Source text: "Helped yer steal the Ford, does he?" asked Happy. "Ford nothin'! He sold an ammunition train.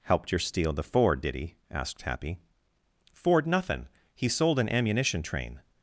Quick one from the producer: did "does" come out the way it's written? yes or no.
no